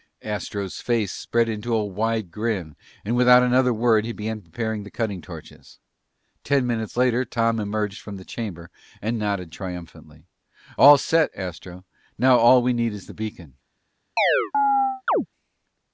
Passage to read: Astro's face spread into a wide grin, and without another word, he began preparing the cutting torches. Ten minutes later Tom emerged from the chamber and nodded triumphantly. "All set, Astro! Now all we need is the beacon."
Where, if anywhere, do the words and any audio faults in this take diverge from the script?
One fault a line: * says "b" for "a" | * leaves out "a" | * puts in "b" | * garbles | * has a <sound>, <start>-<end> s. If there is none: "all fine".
* has a chirp, 14.2-15.3 s